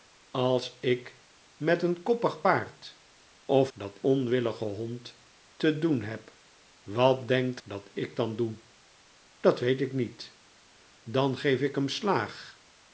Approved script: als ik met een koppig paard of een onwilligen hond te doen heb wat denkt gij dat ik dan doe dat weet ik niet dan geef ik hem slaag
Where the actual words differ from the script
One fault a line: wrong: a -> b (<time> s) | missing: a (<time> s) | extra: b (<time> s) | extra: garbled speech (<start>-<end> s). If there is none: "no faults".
wrong: een -> dat (3.7 s)
missing: gij (7.6 s)